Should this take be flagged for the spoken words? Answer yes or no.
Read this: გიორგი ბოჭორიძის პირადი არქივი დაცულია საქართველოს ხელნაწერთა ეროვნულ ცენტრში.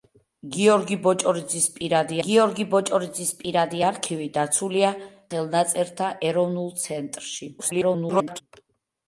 yes